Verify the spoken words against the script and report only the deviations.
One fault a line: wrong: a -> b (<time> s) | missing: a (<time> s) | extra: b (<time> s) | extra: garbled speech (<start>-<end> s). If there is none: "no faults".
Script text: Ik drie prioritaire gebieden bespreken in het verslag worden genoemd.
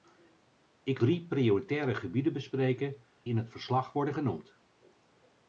no faults